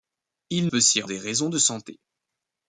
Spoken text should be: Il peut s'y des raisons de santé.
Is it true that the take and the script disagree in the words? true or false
false